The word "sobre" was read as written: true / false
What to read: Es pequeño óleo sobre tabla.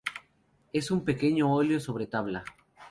true